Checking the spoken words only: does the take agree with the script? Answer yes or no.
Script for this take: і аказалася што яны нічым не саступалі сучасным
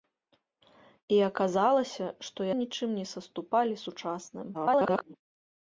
no